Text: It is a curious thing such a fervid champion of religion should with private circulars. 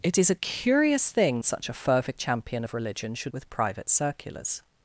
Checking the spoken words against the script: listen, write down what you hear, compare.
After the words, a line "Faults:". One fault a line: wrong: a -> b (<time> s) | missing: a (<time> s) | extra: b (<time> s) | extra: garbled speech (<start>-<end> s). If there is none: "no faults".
It is a curious thing such a fervid champion of religion should with private circulars.
Faults:
no faults